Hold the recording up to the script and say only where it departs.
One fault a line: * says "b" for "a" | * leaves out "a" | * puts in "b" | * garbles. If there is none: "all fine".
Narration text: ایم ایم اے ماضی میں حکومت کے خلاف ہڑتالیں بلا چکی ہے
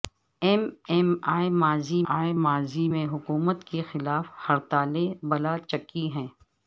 * puts in "اے ماضی"